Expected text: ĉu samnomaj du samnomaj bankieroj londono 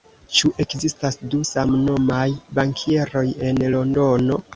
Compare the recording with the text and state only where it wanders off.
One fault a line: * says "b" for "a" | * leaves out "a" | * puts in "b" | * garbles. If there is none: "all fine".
* says "ekzistas" for "samnomaj"
* puts in "en"